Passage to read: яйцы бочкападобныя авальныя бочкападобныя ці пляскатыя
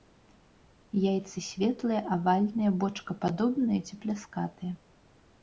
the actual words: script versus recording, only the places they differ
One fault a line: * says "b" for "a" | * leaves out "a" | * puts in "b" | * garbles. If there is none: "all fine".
* says "светлыя" for "бочкападобныя"